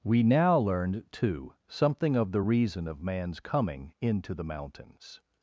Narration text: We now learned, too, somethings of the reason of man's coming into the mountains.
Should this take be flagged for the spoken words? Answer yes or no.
yes